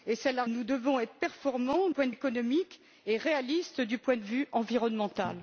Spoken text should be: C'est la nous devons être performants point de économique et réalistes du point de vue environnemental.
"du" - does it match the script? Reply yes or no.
yes